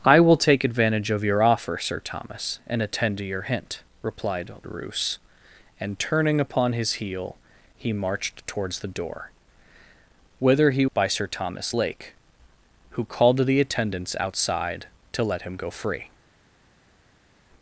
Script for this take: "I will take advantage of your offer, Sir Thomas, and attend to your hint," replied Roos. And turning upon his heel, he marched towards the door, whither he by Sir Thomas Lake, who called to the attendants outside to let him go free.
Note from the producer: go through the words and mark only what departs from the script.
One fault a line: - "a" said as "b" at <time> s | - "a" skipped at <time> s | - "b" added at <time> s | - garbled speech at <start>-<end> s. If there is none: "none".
none